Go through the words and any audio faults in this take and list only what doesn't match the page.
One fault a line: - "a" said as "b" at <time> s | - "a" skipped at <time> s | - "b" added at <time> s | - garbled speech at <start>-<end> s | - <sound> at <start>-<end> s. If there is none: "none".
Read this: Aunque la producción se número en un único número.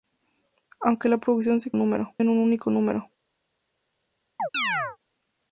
- chirp at 4.4-5.0 s